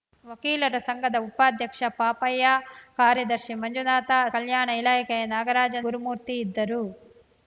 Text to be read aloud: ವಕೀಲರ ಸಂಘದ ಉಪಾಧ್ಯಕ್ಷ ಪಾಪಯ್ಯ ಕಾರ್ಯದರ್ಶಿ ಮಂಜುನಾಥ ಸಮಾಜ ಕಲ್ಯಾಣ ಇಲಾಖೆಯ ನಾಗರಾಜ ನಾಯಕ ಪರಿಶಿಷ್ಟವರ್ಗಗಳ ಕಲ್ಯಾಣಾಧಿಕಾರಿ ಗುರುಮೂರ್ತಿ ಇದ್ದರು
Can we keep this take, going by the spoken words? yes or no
no